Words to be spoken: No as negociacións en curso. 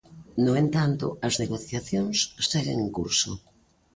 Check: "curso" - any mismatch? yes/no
no